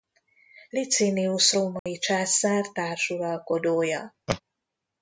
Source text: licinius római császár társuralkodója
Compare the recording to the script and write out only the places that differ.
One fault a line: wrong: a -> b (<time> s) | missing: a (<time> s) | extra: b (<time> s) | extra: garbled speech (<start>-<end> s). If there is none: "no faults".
no faults